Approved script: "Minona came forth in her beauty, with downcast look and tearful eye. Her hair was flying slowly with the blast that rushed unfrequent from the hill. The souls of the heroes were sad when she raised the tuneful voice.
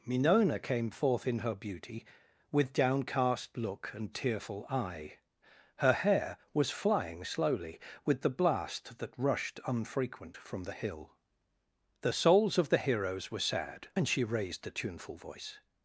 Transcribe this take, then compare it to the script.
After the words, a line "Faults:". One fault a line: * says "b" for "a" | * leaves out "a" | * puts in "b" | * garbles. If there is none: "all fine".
"Minona came forth in her beauty, with downcast look and tearful eye. Her hair was flying slowly with the blast that rushed unfrequent from the hill. The souls of the heroes were sad and she raised a tuneful voice.
Faults:
* says "and" for "when"
* says "a" for "the"